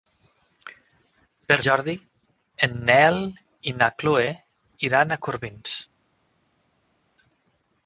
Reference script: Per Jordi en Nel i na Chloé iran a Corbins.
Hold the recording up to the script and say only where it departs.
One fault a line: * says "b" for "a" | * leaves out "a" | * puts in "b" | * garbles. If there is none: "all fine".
all fine